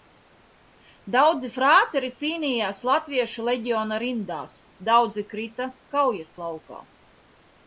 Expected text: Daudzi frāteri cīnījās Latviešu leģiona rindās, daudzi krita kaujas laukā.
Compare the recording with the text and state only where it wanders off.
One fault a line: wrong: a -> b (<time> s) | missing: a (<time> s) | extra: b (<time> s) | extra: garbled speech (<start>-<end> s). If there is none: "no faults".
no faults